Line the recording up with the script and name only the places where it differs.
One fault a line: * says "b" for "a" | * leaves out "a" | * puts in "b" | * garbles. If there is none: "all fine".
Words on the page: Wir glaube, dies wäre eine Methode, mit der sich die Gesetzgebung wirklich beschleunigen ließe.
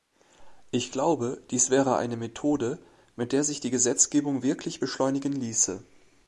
* says "Ich" for "Wir"